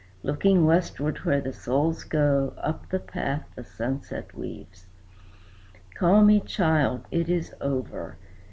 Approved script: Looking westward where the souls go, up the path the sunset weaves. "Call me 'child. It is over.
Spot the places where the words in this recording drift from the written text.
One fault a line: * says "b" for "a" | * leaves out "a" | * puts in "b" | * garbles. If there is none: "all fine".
all fine